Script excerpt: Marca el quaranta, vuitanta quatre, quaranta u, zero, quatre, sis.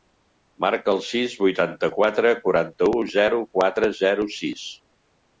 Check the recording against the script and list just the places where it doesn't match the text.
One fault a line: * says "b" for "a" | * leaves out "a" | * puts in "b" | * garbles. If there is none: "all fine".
* says "sis" for "quaranta"
* puts in "zero"